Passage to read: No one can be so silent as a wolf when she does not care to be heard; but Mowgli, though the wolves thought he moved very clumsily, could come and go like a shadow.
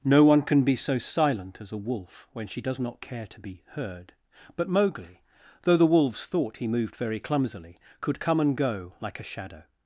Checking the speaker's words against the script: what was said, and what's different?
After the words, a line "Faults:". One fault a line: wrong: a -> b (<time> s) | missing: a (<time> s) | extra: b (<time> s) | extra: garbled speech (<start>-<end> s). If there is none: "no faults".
No one can be so silent as a wolf when she does not care to be heard; but Mowgli, though the wolves thought he moved very clumsily, could come and go like a shadow.
Faults:
no faults